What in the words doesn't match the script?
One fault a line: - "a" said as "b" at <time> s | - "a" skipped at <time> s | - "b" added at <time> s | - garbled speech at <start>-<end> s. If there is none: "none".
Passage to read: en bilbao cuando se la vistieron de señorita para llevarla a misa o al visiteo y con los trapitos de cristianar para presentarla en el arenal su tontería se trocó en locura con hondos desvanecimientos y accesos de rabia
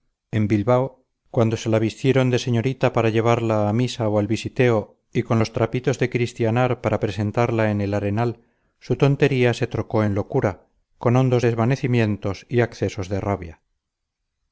none